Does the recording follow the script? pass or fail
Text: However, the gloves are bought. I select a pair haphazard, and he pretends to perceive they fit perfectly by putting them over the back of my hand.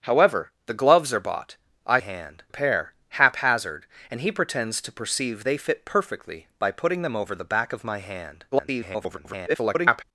fail